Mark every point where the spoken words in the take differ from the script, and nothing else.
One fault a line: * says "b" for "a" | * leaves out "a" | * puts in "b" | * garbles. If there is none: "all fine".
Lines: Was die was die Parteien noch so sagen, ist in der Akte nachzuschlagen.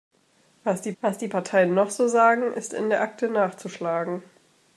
all fine